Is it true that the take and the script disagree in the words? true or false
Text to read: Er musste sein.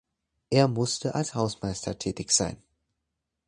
true